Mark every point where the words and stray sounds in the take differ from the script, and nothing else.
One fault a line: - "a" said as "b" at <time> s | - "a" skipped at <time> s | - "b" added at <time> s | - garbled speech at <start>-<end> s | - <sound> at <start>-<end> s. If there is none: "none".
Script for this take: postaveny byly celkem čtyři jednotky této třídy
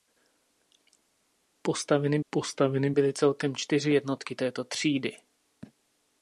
- "postaveny" added at 2.3 s